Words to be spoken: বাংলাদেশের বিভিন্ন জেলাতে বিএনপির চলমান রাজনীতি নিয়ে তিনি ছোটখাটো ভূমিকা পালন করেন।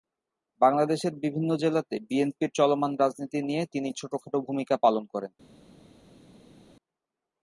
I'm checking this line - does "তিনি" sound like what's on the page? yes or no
yes